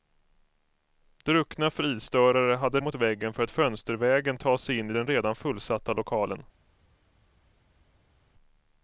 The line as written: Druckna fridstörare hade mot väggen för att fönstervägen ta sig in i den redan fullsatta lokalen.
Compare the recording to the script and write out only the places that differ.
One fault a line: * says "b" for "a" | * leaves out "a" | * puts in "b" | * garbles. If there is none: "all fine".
all fine